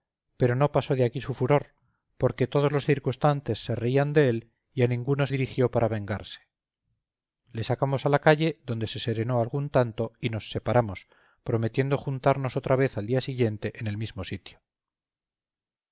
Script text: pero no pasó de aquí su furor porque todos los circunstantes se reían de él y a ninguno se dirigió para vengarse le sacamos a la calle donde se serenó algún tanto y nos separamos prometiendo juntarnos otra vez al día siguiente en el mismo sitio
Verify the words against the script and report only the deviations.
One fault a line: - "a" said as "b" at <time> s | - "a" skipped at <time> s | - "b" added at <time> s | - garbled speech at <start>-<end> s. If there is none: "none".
- "se" skipped at 5.3 s